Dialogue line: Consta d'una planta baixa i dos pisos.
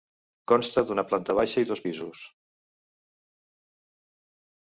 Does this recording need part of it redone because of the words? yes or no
no